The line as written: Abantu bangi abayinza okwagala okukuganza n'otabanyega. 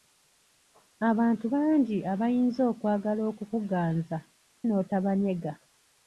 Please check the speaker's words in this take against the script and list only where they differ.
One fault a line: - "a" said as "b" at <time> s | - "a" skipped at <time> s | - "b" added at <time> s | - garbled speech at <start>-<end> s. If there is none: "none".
none